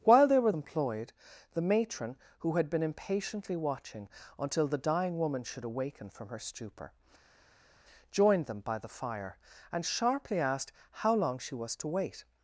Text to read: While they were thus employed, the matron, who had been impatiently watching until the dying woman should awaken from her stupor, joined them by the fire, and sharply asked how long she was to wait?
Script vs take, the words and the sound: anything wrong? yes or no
yes